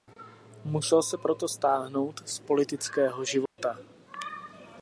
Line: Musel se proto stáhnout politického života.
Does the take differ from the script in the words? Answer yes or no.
yes